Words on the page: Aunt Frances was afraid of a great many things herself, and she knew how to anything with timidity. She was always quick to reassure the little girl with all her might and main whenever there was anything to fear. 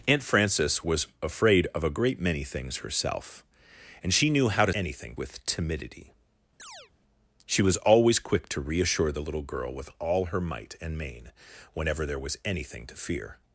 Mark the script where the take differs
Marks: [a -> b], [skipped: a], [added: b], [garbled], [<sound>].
Aunt Frances was afraid of a great many things herself, and she knew how to anything with timidity. [chirp] She was always quick to reassure the little girl with all her might and main whenever there was anything to fear.